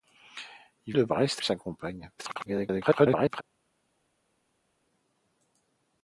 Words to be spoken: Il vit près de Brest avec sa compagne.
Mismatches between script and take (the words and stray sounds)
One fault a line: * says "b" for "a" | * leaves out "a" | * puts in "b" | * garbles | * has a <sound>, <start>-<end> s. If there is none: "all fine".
* leaves out "vit près"
* leaves out "avec"
* garbles